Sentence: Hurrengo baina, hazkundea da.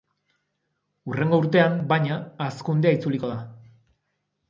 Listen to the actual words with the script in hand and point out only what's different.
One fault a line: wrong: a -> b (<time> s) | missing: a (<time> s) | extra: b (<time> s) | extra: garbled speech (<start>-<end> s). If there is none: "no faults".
extra: urtean (1.4 s)
extra: itzuliko (3.0 s)